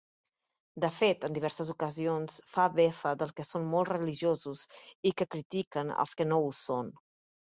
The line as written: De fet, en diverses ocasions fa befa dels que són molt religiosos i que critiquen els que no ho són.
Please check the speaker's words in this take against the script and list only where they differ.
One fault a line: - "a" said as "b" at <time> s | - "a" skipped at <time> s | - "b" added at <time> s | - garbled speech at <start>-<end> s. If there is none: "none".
none